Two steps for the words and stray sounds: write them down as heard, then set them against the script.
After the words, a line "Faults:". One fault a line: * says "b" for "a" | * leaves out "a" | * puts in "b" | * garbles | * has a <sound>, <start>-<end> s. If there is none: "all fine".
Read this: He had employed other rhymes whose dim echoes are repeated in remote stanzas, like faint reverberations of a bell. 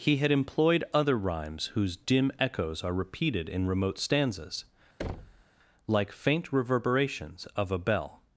He had employed other rhymes whose dim echoes are repeated in remote stanzas, like faint reverberations of a bell.
Faults:
* has a thud, 5.0-5.4 s